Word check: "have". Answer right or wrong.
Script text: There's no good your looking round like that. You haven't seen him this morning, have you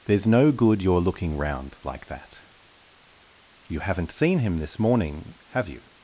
right